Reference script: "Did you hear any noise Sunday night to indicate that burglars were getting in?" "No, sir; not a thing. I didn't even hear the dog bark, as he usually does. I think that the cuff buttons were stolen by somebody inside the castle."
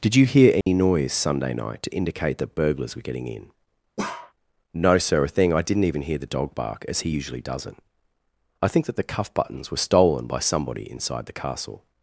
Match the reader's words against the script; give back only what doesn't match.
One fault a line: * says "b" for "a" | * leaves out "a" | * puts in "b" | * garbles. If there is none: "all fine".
* leaves out "not"
* says "doesn't" for "does"